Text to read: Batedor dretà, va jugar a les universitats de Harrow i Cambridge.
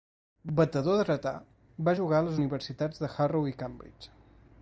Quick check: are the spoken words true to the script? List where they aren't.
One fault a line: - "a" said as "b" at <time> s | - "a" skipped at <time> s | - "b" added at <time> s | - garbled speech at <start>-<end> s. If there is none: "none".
none